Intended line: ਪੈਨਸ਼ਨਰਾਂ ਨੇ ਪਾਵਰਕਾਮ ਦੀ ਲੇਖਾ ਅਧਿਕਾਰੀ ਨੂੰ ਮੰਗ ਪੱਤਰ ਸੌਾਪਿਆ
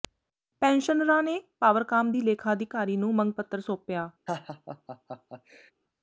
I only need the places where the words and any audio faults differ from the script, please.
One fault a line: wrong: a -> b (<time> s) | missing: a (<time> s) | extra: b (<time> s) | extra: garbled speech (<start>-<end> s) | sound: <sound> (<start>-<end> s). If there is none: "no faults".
sound: laugh (4.3-5.7 s)